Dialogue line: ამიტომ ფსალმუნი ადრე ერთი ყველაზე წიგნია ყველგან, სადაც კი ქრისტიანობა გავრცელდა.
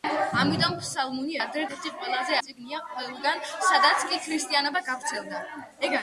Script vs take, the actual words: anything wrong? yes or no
no